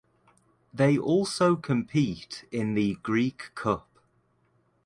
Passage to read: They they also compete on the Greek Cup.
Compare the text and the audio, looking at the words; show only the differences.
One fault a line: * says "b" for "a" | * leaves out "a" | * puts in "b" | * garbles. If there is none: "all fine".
* leaves out "they"
* says "in" for "on"